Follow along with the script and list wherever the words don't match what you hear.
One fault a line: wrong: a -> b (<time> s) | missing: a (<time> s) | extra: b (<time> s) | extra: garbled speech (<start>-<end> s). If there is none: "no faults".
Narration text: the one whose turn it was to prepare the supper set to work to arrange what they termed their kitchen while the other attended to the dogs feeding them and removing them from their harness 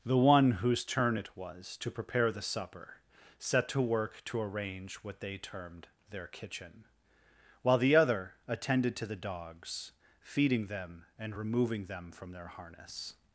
no faults